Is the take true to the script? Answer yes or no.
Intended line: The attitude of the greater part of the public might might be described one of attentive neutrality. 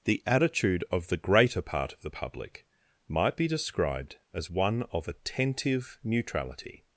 no